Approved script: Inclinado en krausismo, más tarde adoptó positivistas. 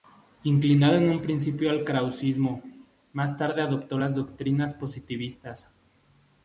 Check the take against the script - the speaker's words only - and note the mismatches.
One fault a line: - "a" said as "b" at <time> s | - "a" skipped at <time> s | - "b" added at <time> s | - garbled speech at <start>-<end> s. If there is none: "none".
- "un principio al" added at 1.1 s
- "las doctrinas" added at 4.0 s